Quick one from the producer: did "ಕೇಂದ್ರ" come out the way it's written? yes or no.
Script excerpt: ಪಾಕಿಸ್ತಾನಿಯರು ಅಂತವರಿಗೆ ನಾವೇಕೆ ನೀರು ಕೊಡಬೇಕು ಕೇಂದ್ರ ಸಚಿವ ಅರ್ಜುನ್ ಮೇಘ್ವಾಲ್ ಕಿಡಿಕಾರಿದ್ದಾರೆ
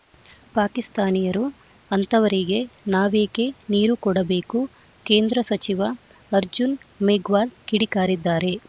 yes